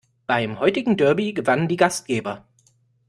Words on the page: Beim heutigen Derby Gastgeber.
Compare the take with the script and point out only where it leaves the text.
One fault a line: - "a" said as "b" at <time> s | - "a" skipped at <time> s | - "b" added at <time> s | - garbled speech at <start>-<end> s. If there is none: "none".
- "gewannen die" added at 1.3 s